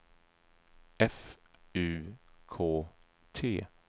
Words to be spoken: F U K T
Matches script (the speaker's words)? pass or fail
pass